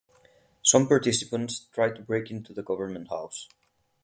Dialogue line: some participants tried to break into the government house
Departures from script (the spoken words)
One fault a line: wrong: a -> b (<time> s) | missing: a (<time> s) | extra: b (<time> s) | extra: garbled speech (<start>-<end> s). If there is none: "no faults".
no faults